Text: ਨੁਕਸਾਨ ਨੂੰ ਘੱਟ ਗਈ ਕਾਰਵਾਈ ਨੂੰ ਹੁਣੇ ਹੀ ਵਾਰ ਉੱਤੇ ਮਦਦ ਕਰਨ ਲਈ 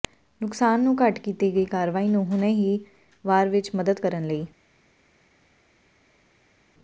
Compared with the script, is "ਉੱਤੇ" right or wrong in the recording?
wrong